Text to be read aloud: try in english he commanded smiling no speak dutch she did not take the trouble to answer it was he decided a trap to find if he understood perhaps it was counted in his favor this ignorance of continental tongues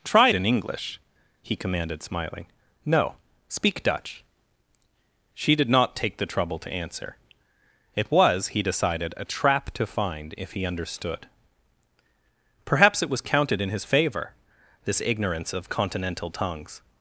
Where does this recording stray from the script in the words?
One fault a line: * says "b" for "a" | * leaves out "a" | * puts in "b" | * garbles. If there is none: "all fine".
all fine